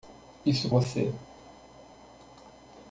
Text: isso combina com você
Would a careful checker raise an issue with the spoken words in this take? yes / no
yes